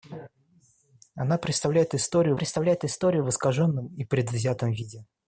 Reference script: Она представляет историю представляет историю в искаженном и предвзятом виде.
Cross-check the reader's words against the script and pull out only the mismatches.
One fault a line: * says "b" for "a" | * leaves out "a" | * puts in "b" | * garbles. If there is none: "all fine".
all fine